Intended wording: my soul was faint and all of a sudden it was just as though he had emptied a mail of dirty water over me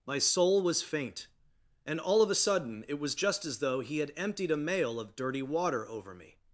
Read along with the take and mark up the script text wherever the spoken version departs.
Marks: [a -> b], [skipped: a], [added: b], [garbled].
my soul was faint and all of a sudden it was just as though he had emptied a mail of dirty water over me